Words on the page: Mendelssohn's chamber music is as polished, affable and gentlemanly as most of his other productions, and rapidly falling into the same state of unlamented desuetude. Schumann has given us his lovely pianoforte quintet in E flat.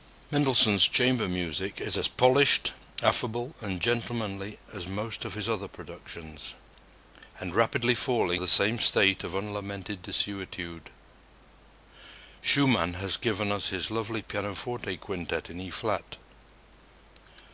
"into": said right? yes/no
no